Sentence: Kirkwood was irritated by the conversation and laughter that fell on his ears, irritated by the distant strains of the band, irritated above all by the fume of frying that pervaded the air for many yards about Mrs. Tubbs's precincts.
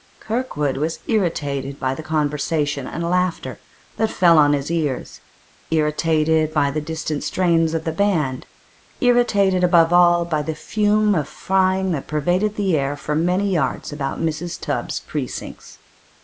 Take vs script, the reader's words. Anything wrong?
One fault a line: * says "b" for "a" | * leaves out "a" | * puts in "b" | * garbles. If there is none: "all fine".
all fine